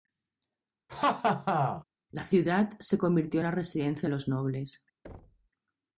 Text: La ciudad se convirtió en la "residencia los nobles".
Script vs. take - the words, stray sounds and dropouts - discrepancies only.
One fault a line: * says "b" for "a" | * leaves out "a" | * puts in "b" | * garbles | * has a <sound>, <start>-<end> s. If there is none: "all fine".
* has a laugh, 0.9-1.8 s
* has a thud, 5.0-5.5 s